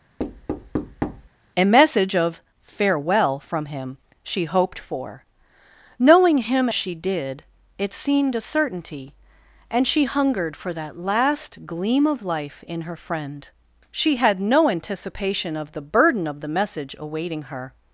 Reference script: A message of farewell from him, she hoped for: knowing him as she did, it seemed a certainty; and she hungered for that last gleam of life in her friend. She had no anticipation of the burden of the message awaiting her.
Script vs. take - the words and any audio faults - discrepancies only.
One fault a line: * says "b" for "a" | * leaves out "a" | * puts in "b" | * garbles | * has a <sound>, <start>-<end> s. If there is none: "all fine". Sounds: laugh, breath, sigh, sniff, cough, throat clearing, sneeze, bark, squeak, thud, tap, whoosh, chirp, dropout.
* has a thud, 0.2-1.3 s
* leaves out "as"